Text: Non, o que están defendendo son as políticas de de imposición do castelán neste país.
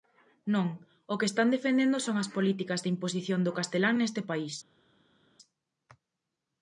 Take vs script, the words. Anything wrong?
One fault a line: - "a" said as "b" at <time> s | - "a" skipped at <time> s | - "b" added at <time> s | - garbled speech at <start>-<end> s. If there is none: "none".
- "de" skipped at 2.9 s